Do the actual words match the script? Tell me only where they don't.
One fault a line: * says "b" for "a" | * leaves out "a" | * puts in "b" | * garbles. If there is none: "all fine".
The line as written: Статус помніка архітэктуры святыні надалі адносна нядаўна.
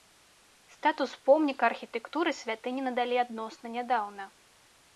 all fine